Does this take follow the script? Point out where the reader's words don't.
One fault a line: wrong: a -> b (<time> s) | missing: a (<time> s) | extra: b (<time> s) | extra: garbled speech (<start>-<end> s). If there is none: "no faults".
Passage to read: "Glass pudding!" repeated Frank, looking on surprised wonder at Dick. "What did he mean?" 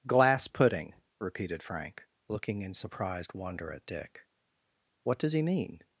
wrong: on -> in (2.6 s)
wrong: did -> does (5.2 s)